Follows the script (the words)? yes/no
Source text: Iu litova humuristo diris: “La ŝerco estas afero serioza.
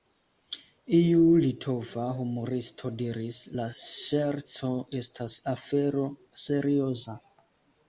yes